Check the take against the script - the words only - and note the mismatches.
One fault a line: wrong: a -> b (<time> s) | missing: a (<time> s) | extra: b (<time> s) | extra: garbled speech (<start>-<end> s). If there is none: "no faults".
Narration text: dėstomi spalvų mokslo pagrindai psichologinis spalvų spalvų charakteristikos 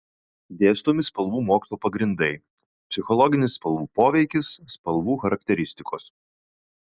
extra: poveikis (4.0 s)